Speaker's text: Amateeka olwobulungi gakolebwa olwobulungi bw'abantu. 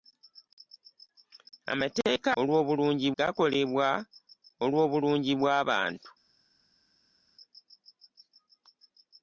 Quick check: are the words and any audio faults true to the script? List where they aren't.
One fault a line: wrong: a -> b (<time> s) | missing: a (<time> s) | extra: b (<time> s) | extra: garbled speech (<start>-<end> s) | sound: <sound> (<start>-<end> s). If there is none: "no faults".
no faults